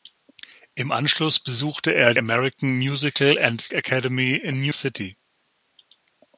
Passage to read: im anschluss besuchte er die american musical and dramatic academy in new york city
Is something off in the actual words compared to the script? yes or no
yes